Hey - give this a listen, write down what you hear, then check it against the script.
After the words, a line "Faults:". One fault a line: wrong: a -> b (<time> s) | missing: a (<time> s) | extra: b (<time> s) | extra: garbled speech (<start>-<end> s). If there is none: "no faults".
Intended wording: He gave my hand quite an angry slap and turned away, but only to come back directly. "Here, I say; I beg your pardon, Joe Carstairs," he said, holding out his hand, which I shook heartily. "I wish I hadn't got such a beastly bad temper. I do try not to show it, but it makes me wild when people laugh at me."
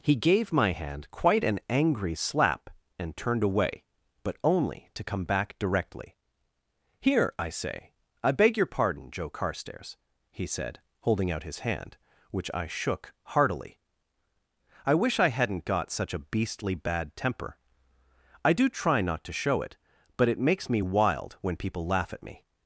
He gave my hand quite an angry slap and turned away, but only to come back directly. "Here, I say; I beg your pardon, Joe Carstairs," he said, holding out his hand, which I shook heartily. "I wish I hadn't got such a beastly bad temper. I do try not to show it, but it makes me wild when people laugh at me."
Faults:
no faults